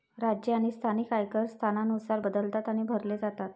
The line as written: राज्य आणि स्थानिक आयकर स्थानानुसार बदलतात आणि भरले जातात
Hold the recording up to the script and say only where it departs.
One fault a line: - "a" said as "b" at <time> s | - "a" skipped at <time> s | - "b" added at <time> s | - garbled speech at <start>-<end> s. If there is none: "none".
none